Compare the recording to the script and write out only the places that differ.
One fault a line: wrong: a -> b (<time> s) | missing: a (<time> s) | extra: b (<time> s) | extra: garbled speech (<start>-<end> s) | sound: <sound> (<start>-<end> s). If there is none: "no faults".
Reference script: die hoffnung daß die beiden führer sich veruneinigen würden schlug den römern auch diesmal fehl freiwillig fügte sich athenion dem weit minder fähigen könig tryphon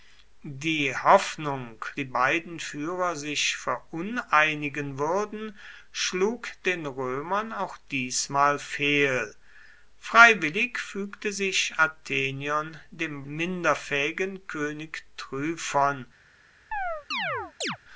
missing: daß (1.9 s)
missing: weit (13.2 s)
sound: chirp (16.7-17.8 s)